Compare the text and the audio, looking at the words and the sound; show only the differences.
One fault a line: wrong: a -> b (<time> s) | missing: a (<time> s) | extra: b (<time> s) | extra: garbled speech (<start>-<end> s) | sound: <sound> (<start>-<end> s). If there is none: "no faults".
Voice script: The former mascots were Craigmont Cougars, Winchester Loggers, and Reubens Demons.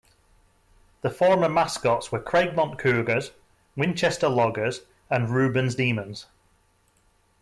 no faults